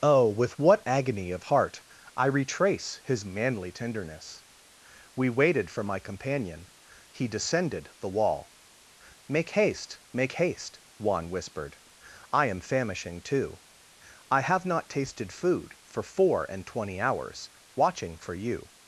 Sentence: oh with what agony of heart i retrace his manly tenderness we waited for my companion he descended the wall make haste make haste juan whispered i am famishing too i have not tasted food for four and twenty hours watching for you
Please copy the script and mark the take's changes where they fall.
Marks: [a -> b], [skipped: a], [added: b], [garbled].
oh with what agony of heart i retrace his manly tenderness we waited for my companion he descended the wall make haste make haste juan whispered i am famishing too i have not tasted food for four and twenty hours watching for you